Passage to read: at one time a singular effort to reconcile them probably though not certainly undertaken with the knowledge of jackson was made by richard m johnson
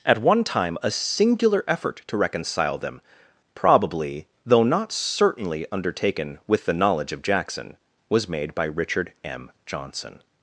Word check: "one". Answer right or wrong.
right